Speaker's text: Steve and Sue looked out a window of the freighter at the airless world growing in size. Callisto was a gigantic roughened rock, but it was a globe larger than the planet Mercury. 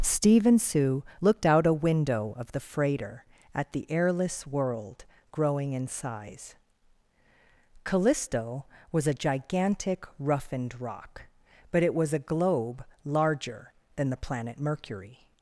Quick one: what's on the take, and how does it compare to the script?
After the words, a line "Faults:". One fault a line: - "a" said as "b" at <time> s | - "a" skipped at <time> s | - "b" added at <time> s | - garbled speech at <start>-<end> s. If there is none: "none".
Steve and Sue looked out a window of the freighter at the airless world growing in size. Callisto was a gigantic roughened rock, but it was a globe larger than the planet Mercury.
Faults:
none